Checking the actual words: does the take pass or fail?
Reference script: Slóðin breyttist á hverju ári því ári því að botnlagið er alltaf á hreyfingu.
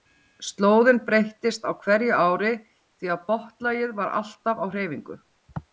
fail